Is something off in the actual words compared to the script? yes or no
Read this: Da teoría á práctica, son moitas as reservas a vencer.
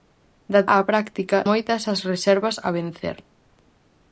yes